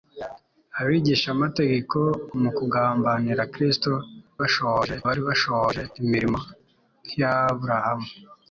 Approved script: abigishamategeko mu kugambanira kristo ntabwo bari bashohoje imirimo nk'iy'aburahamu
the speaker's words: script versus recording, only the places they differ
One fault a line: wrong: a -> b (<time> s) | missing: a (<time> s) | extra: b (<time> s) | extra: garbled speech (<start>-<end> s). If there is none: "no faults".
wrong: ntabwo -> bashohoje (4.4 s)